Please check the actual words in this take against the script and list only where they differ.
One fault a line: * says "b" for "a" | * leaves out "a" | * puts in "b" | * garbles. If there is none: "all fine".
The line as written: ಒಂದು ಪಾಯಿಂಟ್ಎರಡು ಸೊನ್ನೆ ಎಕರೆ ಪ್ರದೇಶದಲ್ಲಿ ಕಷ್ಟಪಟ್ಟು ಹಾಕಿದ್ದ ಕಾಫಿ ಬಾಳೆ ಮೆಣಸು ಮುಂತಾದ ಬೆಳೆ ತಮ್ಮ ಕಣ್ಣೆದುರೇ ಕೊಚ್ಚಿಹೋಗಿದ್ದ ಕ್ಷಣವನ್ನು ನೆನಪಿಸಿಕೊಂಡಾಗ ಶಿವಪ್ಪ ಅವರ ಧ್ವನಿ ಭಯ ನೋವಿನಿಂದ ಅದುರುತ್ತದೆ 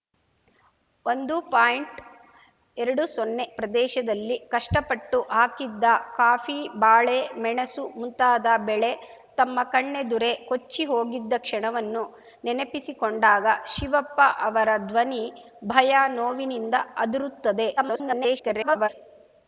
* leaves out "ಎಕರೆ"
* garbles